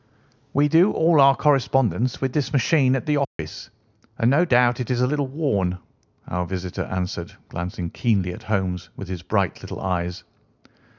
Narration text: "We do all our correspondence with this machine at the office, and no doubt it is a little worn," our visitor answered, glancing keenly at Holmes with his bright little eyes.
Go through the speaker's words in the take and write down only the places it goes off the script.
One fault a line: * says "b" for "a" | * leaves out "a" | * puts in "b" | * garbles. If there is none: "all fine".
all fine